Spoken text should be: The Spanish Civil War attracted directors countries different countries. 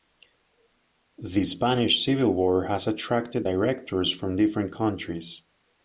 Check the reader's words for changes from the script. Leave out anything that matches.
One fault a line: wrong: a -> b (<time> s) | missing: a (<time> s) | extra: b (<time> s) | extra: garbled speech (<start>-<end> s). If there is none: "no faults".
extra: has (2.6 s)
wrong: countries -> from (4.1 s)